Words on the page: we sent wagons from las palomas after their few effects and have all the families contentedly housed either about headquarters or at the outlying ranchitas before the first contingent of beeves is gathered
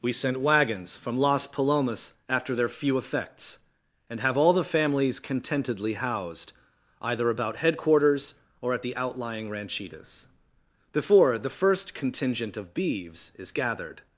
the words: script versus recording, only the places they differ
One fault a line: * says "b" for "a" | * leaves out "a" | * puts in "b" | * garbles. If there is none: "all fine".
all fine